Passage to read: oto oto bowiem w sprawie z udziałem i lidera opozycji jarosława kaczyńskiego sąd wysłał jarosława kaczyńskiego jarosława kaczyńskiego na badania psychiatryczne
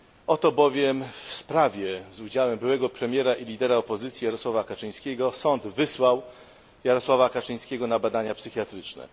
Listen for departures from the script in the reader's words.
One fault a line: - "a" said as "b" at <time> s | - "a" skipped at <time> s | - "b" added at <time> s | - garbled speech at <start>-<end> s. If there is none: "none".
- "oto" skipped at 0.5 s
- "byłego premiera" added at 2.6 s
- "jarosława kaczyńskiego" skipped at 7.9 s